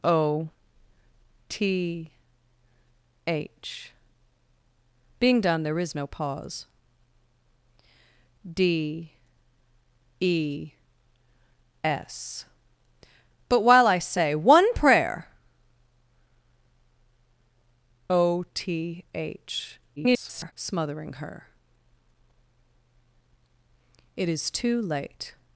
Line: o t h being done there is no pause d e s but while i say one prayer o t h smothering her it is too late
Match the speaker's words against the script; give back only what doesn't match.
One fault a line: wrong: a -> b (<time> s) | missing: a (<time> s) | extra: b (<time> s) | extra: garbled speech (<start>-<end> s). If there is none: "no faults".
extra: garbled speech (20.0-20.5 s)